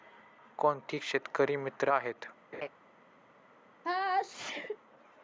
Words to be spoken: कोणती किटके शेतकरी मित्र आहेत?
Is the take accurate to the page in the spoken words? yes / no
no